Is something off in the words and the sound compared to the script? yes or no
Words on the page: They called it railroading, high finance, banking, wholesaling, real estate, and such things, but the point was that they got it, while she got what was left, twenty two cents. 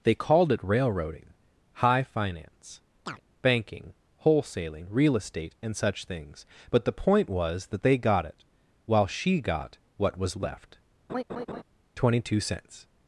yes